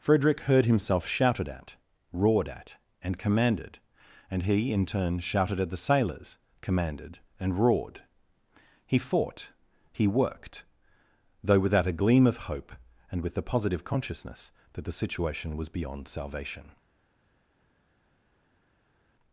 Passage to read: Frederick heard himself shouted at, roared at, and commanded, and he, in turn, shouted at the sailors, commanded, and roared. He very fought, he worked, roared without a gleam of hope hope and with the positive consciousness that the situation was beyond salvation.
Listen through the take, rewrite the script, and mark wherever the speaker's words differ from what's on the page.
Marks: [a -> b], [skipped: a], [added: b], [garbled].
Frederick heard himself shouted at, roared at, and commanded, and he, in turn, shouted at the sailors, commanded, and roared. He [skipped: very] fought, he worked, [roared -> though] without a gleam of hope [skipped: hope] and with the positive consciousness that the situation was beyond salvation.